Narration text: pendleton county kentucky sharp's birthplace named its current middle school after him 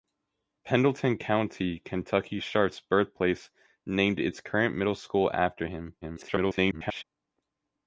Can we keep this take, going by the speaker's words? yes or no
no